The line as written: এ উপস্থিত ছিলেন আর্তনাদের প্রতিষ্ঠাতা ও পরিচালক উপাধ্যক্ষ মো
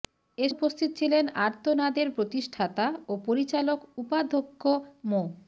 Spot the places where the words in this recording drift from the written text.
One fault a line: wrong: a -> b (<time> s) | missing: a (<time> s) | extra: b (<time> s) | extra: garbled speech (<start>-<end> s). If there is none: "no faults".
no faults